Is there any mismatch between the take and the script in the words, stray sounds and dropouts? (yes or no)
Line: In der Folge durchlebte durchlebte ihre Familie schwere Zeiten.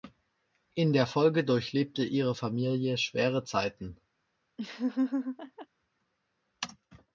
yes